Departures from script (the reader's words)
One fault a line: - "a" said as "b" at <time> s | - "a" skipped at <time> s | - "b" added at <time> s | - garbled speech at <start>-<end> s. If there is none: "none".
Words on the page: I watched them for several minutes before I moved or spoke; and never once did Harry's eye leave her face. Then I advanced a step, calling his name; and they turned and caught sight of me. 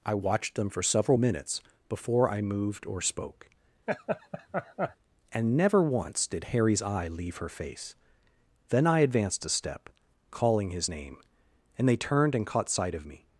none